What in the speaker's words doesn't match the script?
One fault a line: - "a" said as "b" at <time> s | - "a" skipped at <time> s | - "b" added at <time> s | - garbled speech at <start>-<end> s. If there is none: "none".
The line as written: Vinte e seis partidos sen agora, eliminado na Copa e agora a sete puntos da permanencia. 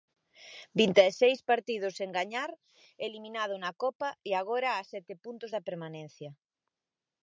- "agora" said as "gañar" at 2.2 s